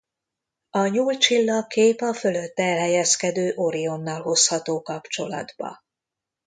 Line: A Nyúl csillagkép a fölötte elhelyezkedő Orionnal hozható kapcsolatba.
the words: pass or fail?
pass